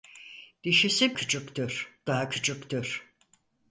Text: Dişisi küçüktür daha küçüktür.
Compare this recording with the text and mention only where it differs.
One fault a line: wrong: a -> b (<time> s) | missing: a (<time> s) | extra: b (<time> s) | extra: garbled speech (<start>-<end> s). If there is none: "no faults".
no faults